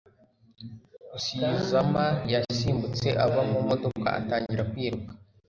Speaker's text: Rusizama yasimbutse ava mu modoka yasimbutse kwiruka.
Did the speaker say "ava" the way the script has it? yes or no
yes